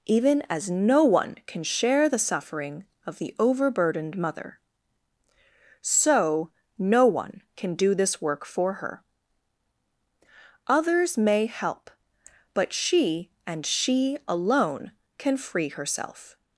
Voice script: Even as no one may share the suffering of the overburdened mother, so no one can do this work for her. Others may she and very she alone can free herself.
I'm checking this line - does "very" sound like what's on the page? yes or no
no